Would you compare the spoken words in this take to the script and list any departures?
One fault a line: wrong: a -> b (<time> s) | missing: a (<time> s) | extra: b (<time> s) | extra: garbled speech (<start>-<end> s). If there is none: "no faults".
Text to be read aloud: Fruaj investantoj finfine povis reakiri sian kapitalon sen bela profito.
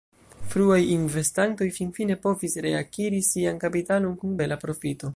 wrong: sen -> kun (4.2 s)